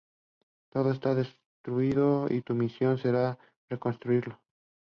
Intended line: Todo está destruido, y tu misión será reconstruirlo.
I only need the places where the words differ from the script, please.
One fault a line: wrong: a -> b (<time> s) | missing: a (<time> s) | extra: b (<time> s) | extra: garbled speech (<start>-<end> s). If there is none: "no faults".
no faults